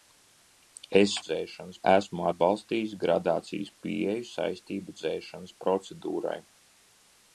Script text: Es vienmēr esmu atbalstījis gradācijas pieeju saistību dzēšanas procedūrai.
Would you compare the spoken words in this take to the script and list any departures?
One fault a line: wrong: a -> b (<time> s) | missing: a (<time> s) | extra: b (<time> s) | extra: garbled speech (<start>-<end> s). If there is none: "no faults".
wrong: vienmēr -> dzēšanas (1.2 s)